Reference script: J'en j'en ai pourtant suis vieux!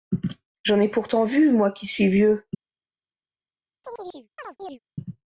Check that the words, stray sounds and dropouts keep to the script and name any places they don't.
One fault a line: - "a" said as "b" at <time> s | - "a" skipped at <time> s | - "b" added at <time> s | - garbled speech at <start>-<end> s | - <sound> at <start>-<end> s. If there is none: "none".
- "j'en" skipped at 0.8 s
- "vu moi qui" added at 1.2 s
- chirp at 3.8-4.8 s